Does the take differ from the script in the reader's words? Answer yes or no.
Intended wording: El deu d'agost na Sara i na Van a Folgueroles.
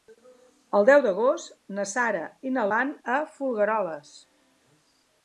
no